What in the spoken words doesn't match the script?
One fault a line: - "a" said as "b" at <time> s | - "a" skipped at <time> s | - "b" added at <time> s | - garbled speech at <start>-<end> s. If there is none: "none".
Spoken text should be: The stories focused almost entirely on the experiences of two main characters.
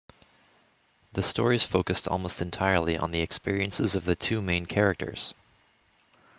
- "the" added at 4.0 s